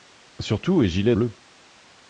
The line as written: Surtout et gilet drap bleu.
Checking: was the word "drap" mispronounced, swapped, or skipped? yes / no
yes